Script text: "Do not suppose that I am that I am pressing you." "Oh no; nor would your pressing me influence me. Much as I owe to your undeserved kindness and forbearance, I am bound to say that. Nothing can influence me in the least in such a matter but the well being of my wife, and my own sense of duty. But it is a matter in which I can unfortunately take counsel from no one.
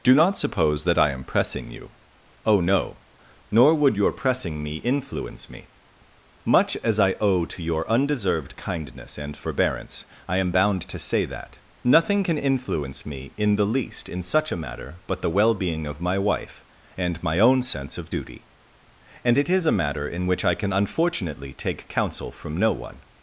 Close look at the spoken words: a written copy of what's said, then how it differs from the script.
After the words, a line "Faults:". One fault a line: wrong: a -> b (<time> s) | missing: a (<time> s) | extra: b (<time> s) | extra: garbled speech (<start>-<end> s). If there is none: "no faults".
"Do not suppose that I am pressing you." "Oh no; nor would your pressing me influence me. Much as I owe to your undeserved kindness and forbearance, I am bound to say that. Nothing can influence me in the least in such a matter but the well being of my wife, and my own sense of duty. And it is a matter in which I can unfortunately take counsel from no one.
Faults:
missing: that I am (1.2 s)
wrong: But -> And (19.2 s)